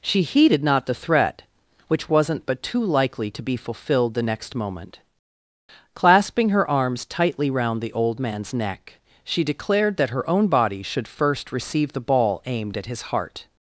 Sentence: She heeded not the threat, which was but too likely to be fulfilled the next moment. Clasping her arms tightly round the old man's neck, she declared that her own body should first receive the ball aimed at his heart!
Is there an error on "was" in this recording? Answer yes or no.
yes